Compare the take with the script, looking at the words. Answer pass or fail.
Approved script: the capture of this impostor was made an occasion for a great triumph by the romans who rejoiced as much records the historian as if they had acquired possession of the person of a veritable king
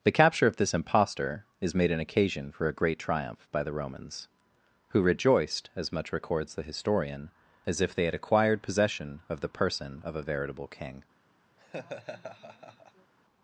fail